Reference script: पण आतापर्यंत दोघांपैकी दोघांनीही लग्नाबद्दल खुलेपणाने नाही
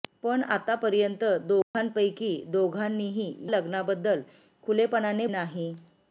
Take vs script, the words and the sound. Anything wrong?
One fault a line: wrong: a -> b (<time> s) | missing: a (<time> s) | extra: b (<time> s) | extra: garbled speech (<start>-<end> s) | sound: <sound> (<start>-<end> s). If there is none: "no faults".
sound: dropout (1.6-1.7 s)